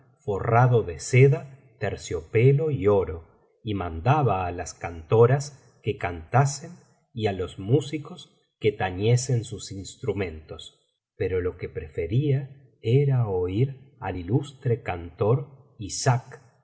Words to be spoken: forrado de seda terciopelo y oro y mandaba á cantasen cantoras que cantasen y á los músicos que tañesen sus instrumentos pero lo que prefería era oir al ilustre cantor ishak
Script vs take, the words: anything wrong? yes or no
yes